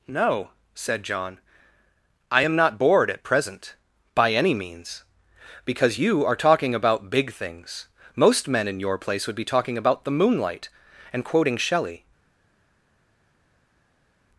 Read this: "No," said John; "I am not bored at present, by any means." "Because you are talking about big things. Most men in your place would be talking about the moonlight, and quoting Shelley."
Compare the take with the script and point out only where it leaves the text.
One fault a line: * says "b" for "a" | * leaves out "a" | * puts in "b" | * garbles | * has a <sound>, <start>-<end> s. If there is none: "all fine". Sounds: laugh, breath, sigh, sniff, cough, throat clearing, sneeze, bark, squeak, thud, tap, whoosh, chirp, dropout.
all fine